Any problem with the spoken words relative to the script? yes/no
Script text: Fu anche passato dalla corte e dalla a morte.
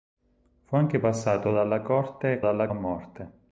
no